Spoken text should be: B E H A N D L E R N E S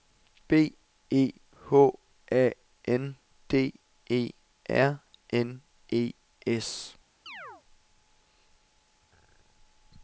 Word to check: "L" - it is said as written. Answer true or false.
false